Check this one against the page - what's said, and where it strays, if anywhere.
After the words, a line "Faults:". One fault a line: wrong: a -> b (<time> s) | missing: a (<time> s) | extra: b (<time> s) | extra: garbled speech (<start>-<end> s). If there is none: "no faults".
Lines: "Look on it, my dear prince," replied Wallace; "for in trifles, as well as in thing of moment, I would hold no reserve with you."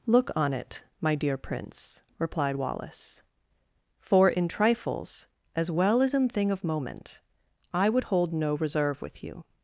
"Look on it, my dear prince," replied Wallace; "for in trifles, as well as in thing of moment, I would hold no reserve with you."
Faults:
no faults